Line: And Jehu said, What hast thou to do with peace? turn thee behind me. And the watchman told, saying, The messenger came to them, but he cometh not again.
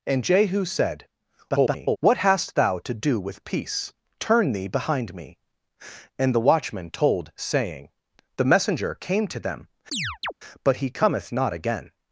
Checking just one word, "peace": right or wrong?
right